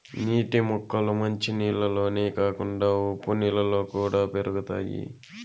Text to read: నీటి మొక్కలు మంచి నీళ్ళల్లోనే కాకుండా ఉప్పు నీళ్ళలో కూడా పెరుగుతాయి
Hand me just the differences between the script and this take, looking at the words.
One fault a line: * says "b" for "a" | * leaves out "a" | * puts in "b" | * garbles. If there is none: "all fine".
all fine